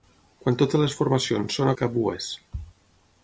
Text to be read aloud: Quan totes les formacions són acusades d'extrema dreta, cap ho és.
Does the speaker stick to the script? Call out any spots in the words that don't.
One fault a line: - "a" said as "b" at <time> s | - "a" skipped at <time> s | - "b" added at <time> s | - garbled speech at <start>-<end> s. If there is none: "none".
- "acusades d'extrema dreta" skipped at 1.7 s